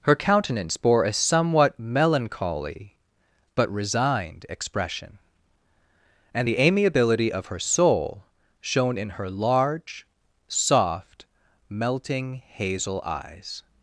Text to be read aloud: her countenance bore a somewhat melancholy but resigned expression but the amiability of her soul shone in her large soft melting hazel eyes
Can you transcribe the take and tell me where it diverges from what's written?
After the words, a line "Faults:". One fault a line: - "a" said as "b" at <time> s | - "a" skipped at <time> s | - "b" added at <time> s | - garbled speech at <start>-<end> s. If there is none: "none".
her countenance bore a somewhat melancholy but resigned expression and the amiability of her soul shone in her large soft melting hazel eyes
Faults:
- "but" said as "and" at 6.3 s